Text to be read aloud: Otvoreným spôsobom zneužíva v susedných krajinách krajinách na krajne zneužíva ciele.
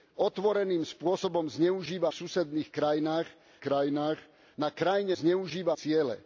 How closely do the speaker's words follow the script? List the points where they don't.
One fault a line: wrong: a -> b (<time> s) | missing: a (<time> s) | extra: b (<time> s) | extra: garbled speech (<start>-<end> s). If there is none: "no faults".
no faults